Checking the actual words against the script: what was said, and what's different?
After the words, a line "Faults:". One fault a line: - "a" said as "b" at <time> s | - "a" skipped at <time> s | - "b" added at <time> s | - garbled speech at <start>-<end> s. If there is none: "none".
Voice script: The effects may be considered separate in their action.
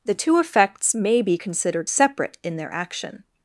The two effects may be considered separate in their action.
Faults:
- "two" added at 0.1 s